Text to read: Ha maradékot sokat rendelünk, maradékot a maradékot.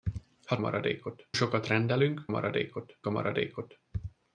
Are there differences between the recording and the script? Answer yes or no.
no